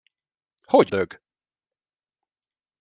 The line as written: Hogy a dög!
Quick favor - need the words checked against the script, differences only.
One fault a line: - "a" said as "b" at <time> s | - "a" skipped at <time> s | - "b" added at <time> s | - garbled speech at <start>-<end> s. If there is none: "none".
none